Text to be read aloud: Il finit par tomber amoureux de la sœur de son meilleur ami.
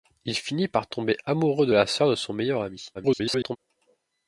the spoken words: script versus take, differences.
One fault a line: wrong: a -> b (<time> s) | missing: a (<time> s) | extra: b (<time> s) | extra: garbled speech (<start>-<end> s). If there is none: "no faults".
extra: garbled speech (2.9-3.6 s)